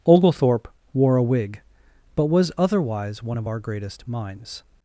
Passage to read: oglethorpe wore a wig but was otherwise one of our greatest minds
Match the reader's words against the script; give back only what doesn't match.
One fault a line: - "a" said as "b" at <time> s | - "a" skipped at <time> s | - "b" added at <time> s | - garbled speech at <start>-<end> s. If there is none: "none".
none